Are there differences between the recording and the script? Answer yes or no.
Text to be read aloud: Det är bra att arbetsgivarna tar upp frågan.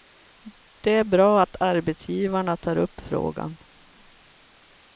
no